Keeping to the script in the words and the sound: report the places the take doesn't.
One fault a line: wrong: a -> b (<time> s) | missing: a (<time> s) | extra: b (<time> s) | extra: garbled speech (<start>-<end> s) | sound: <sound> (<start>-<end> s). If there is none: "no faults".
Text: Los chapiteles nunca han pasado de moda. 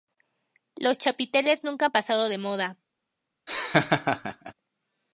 sound: laugh (3.5-4.5 s)